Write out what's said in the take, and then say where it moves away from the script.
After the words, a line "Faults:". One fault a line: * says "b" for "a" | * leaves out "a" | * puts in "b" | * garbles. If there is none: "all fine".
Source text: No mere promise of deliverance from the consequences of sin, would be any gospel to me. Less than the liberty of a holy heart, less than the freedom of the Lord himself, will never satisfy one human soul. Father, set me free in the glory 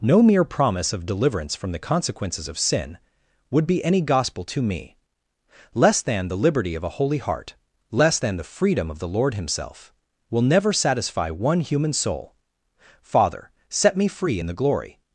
No mere promise of deliverance from the consequences of sin, would be any gospel to me. Less than the liberty of a holy heart, less than the freedom of the Lord himself, will never satisfy one human soul. Father, set me free in the glory
Faults:
all fine